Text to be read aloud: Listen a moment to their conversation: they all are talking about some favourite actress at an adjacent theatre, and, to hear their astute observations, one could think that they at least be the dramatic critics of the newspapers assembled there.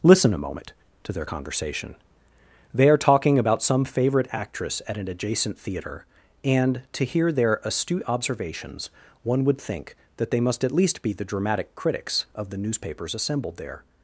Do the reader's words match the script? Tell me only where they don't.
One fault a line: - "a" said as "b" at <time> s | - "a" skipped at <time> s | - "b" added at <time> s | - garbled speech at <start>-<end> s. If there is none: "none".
- "all" skipped at 2.9 s
- "could" said as "would" at 9.4 s
- "must" added at 10.4 s